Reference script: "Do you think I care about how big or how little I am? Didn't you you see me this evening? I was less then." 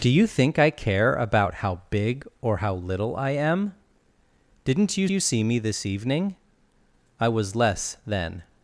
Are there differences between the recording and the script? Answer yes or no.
no